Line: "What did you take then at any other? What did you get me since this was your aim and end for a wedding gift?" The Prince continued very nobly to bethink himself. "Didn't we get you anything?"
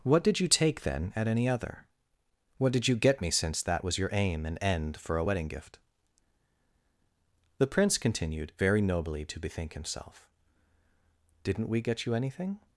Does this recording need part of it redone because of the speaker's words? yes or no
yes